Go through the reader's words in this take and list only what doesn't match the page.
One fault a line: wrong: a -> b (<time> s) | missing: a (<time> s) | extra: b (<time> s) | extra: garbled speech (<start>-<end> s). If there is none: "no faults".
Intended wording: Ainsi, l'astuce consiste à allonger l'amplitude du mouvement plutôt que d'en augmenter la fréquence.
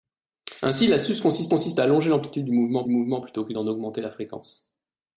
extra: consiste (1.5 s)
extra: mouvement (2.9 s)